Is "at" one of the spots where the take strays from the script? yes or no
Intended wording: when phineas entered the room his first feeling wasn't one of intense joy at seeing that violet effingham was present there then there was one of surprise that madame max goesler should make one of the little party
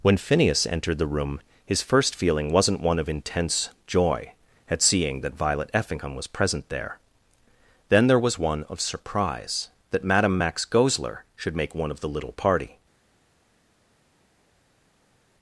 no